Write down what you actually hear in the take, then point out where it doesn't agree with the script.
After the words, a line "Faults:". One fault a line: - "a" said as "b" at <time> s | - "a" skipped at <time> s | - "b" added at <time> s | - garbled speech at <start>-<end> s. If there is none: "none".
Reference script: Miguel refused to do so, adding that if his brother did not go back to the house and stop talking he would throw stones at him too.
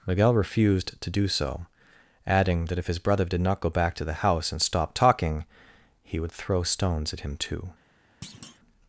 Miguel refused to do so, adding that if his brother did not go back to the house and stop talking he would throw stones at him too.
Faults:
none